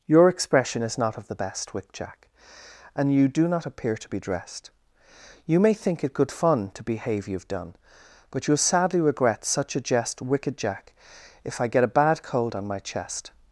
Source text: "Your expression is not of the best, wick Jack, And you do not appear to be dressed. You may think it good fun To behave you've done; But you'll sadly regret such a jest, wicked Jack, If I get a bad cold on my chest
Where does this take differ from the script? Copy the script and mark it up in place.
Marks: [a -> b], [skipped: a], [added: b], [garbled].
"Your expression is not of the best, wick Jack, And you do not appear to be dressed. You may think it good fun To behave you've done; But you'll sadly regret such a jest, wicked Jack, If I get a bad cold on my chest